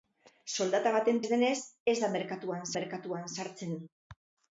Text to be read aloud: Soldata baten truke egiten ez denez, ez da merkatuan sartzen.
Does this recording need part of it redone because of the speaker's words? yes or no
yes